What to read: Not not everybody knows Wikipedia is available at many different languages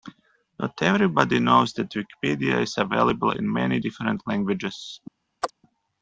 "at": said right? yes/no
no